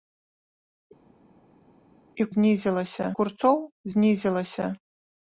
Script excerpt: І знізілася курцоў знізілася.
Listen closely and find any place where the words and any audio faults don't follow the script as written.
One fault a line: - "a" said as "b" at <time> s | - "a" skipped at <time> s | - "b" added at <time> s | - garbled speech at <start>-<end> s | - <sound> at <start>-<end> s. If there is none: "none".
none